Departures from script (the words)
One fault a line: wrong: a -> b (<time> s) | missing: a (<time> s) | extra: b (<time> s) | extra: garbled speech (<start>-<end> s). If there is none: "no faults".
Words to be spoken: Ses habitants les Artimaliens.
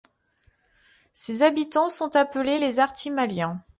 extra: sont appelés (1.9 s)